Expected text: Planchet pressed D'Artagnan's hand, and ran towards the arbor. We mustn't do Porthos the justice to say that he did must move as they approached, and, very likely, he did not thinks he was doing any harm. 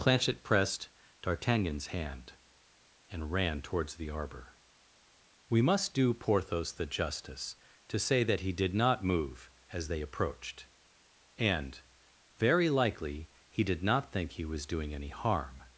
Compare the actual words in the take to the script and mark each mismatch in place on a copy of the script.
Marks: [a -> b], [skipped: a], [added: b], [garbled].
Planchet pressed D'Artagnan's hand, and ran towards the arbor. We [mustn't -> must] do Porthos the justice to say that he did [must -> not] move as they approached, and, very likely, he did not [thinks -> think] he was doing any harm.